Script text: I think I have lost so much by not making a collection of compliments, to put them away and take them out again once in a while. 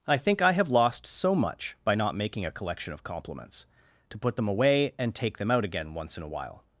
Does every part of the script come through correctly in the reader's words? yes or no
yes